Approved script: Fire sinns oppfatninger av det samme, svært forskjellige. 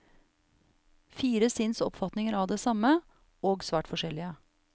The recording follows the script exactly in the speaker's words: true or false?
false